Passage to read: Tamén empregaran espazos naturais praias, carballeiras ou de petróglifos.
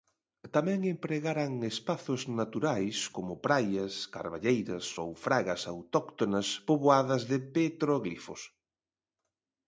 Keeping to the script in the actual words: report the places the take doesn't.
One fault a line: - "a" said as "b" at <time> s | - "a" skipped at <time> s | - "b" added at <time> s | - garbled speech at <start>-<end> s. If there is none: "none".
- "como" added at 3.1 s
- "fragas autóctonas poboadas" added at 5.2 s